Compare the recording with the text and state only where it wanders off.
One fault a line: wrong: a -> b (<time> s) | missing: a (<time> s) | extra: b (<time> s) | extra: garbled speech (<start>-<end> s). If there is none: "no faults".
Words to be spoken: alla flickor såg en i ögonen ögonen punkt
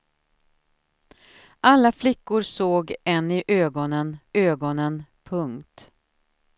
no faults